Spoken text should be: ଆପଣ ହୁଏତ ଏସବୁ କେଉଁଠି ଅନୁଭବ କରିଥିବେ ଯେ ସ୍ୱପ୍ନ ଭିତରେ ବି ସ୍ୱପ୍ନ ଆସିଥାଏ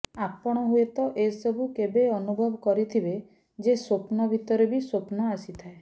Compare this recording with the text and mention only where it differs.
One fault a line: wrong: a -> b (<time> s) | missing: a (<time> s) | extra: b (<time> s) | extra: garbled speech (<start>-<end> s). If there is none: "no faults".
wrong: କେଉଁଠି -> କେବେ (1.8 s)